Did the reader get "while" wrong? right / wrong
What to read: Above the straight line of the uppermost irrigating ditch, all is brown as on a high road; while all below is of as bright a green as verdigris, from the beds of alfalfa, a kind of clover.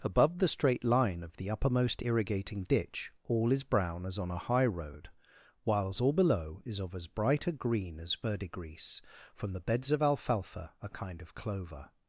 wrong